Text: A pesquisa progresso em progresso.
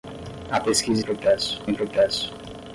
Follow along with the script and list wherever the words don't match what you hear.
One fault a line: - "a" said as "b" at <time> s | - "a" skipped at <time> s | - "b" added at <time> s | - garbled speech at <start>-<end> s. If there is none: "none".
none